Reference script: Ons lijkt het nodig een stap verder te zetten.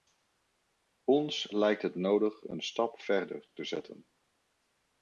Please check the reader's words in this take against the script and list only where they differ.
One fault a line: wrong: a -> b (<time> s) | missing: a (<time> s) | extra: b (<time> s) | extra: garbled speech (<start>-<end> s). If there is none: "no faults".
no faults